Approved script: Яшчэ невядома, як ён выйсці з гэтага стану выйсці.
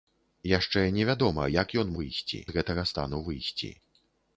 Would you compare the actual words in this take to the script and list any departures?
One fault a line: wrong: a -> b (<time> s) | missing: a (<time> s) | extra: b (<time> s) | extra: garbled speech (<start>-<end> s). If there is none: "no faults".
no faults